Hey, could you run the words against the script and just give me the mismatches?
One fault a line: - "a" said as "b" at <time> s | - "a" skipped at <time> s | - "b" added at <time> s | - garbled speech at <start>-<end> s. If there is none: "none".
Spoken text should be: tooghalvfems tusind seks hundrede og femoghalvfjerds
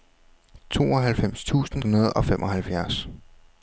- "seks" skipped at 1.8 s